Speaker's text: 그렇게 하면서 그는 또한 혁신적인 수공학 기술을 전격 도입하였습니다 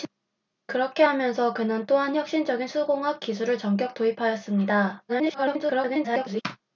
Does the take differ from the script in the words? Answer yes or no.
yes